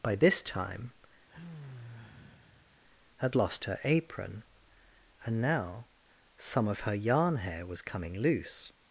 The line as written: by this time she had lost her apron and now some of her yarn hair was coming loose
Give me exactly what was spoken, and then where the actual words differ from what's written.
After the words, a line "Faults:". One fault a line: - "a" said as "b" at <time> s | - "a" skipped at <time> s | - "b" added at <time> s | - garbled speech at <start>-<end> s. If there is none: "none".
by this time had lost her apron and now some of her yarn hair was coming loose
Faults:
- "she" skipped at 0.9 s